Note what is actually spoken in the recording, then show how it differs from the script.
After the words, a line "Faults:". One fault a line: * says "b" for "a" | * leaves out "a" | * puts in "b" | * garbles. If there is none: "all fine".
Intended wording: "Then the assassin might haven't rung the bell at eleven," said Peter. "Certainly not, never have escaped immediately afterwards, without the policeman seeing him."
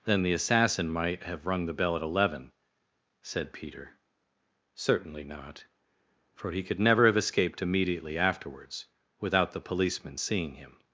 "Then the assassin might have rung the bell at eleven," said Peter. "Certainly not, for he could never have escaped immediately afterwards, without the policeman seeing him."
Faults:
* says "have" for "haven't"
* puts in "for he could"